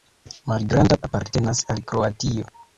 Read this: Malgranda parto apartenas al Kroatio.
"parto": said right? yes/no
no